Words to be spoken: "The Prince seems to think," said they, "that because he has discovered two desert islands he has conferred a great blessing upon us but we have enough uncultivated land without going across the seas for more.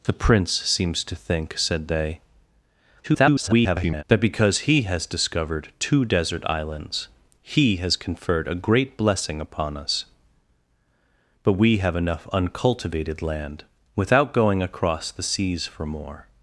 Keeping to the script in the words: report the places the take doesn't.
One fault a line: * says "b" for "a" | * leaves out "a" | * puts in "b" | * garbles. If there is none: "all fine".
* garbles